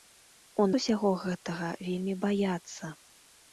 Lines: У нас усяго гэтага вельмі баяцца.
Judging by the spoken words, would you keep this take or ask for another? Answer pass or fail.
fail